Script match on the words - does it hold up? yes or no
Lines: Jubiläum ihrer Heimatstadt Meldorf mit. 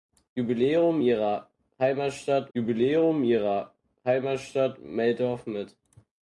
no